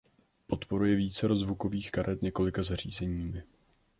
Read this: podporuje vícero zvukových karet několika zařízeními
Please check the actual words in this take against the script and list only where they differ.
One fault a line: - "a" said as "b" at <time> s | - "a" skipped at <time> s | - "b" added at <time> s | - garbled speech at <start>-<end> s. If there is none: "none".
none